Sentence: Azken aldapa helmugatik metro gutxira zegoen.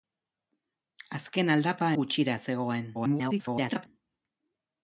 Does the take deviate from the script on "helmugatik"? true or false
true